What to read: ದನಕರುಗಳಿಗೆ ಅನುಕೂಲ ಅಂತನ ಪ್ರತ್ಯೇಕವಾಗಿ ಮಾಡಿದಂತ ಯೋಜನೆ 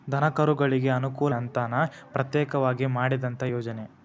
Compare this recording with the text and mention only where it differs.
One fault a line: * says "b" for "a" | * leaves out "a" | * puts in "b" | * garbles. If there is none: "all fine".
all fine